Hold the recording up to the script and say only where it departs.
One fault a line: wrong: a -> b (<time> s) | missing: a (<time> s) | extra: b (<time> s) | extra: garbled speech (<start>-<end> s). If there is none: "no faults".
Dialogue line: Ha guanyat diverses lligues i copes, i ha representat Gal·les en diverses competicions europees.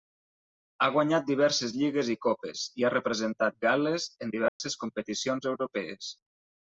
no faults